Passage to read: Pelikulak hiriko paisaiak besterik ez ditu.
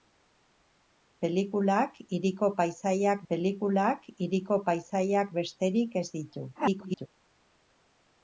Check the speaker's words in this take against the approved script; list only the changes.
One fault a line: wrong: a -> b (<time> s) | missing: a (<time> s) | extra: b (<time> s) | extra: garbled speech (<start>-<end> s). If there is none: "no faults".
extra: pelikulak hiriko paisaiak (3.3 s)
extra: garbled speech (6.5-7.1 s)